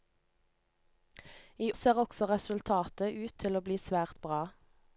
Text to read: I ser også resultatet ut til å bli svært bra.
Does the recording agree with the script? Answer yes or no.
yes